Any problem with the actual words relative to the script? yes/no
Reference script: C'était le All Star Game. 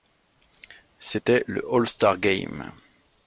no